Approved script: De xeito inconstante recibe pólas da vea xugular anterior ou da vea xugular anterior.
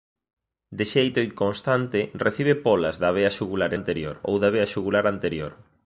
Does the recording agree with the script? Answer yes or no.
yes